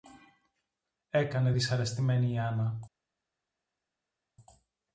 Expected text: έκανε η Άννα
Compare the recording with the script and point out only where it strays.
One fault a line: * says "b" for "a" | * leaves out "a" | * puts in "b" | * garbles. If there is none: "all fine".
* puts in "δυσαρεστημένη"